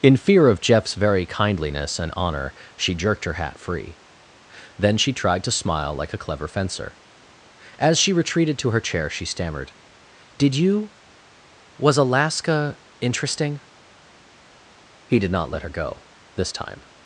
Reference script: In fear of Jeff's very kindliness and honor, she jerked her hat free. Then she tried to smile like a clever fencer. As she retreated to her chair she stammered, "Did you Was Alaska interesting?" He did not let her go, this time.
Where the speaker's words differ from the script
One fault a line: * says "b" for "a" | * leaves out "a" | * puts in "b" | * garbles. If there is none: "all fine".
all fine